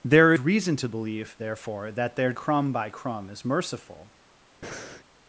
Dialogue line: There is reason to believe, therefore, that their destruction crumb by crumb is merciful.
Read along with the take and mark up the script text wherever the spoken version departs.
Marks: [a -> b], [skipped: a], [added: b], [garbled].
There [skipped: is] reason to believe, therefore, that their [skipped: destruction] crumb by crumb is merciful.